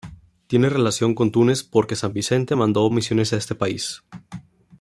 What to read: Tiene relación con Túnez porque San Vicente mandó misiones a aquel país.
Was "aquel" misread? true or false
true